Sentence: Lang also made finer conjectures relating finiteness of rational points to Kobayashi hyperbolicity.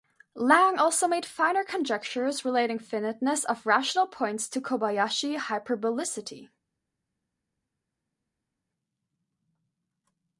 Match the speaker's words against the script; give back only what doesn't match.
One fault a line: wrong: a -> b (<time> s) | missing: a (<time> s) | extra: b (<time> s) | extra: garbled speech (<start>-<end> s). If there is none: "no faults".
no faults